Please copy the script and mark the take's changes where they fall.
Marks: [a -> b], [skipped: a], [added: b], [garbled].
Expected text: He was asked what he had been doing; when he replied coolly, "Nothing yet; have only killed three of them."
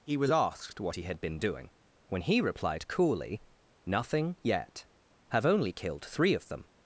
He was asked what he had been doing; when he replied coolly, "Nothing yet; have only killed three of them."